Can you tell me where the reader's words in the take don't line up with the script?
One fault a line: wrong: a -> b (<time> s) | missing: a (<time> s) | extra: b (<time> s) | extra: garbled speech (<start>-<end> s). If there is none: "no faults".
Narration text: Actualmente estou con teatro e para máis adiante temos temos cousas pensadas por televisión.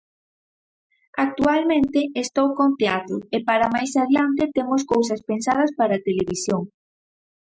missing: temos (4.8 s)
wrong: por -> para (5.8 s)